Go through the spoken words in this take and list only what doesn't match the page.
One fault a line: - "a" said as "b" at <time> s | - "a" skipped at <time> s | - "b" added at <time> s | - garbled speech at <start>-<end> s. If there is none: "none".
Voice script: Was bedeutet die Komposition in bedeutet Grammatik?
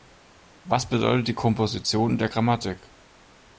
- "bedeutet" said as "der" at 2.2 s